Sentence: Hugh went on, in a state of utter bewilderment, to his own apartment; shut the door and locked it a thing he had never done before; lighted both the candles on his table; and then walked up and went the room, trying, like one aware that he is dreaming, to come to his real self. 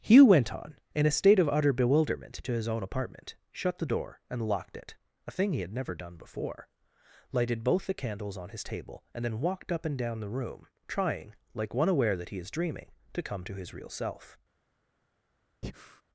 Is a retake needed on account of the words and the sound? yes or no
yes